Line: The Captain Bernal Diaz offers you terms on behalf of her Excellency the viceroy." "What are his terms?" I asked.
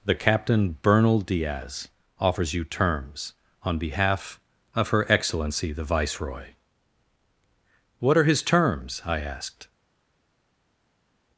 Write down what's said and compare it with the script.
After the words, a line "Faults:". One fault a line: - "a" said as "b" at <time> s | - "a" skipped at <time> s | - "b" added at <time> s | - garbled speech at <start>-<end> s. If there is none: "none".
The Captain Bernal Diaz offers you terms on behalf of her Excellency the viceroy." "What are his terms?" I asked.
Faults:
none